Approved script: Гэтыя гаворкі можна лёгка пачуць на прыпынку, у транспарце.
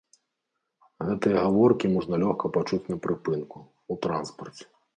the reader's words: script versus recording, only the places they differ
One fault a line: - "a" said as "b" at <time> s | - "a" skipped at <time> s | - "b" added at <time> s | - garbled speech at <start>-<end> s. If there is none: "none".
none